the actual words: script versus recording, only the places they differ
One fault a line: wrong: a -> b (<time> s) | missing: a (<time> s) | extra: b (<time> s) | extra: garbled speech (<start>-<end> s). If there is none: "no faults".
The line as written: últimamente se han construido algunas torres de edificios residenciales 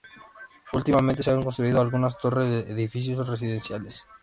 no faults